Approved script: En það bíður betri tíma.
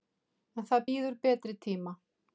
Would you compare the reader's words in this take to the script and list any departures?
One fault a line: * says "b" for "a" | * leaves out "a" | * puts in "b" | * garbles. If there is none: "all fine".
all fine